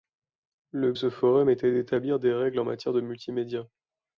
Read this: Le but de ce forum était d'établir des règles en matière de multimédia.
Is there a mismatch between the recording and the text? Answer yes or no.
yes